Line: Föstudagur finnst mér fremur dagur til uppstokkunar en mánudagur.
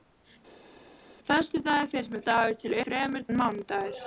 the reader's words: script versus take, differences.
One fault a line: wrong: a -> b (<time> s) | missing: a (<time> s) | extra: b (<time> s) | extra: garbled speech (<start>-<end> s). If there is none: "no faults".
missing: fremur (2.2 s)
wrong: uppstokkunar -> fremur (2.8 s)